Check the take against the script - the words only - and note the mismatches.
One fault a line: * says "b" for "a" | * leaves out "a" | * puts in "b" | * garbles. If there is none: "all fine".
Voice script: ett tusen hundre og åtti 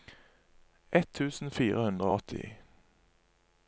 * puts in "fire"